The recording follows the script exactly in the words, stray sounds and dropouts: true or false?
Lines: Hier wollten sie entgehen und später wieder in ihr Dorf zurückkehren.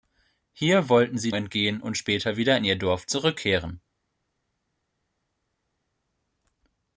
true